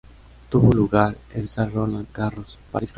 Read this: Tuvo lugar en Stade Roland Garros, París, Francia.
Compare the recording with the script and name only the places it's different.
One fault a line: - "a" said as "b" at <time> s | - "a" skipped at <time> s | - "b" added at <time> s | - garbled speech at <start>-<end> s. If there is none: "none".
none